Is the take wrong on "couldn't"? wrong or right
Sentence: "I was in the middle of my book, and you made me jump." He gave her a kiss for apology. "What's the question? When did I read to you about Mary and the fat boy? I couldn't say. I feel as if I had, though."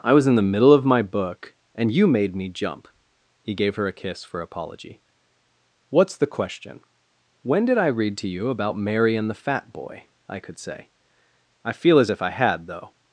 wrong